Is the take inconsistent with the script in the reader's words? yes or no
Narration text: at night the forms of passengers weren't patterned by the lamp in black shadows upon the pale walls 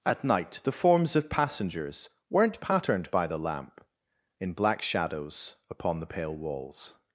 no